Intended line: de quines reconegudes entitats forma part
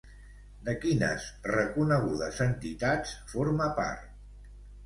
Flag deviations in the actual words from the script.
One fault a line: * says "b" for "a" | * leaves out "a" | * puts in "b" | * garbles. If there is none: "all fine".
all fine